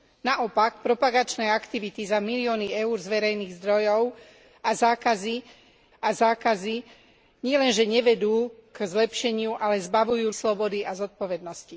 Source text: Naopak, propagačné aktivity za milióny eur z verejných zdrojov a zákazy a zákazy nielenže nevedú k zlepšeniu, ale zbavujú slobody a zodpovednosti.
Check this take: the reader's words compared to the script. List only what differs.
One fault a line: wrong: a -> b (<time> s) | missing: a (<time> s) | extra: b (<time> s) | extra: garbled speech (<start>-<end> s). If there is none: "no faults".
no faults